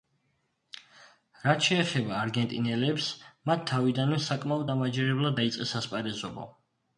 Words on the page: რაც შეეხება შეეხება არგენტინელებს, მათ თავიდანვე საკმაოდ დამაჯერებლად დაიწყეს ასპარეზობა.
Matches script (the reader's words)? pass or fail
fail